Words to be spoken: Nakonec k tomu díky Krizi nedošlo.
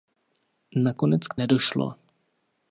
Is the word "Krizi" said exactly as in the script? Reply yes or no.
no